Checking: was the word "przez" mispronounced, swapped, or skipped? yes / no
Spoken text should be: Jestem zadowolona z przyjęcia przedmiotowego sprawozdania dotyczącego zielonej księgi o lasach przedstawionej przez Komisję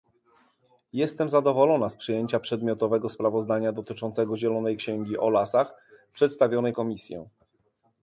yes